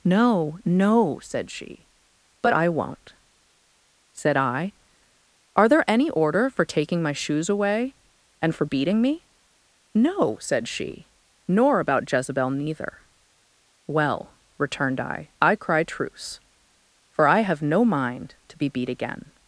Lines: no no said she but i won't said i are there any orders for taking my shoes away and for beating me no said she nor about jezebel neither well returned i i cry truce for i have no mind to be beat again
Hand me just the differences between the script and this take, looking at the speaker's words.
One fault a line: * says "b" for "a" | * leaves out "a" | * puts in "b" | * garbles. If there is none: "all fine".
* says "order" for "orders"